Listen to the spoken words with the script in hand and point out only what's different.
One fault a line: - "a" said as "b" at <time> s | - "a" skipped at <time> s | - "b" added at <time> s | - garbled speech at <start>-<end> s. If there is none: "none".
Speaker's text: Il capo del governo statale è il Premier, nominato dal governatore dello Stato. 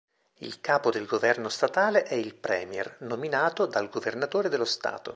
none